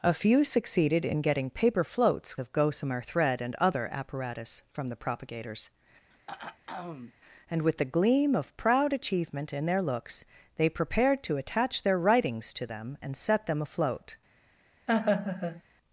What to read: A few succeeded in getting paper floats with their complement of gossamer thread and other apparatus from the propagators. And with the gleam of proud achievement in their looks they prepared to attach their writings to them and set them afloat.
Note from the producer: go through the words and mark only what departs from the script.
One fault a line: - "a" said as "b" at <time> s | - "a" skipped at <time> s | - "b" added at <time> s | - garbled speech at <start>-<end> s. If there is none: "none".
- "with their complement" skipped at 2.4 s